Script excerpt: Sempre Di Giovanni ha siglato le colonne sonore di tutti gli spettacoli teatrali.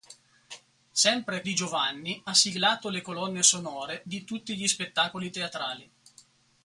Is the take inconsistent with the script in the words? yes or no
no